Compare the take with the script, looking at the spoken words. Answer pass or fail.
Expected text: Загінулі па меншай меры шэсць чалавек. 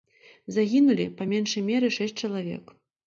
pass